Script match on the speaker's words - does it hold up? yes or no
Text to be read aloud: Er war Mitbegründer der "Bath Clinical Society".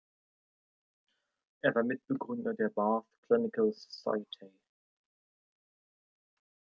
yes